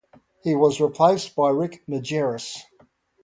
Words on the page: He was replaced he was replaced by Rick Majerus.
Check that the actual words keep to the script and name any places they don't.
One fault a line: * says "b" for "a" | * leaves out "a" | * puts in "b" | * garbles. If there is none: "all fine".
* leaves out "he was replaced"